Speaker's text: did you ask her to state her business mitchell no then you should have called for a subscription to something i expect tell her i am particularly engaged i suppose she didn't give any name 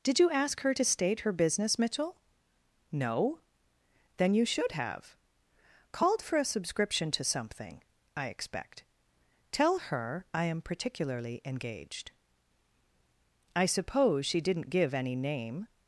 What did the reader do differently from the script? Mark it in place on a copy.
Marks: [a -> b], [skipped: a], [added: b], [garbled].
did you ask her to state her business mitchell no then you should have called for a subscription to something i expect tell her i am particularly engaged i suppose she didn't give any name